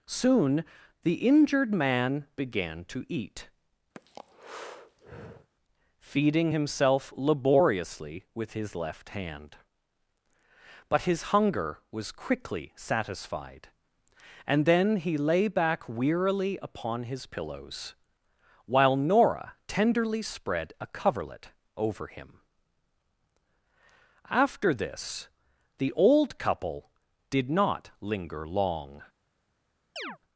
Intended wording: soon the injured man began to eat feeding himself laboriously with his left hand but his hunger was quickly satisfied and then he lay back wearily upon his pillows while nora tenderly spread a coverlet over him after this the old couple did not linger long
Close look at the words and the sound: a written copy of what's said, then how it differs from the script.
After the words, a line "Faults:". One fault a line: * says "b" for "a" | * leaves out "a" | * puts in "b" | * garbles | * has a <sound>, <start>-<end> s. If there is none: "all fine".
soon the injured man began to eat feeding himself laboriously with his left hand but his hunger was quickly satisfied and then he lay back wearily upon his pillows while nora tenderly spread a coverlet over him after this the old couple did not linger long
Faults:
* has a breath, 3.9-5.5 s
* has a chirp, 30.0-30.2 s